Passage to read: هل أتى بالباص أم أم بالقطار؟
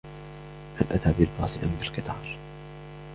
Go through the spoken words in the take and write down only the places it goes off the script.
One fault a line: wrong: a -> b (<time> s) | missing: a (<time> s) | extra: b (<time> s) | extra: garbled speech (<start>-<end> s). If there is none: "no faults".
missing: أم (1.8 s)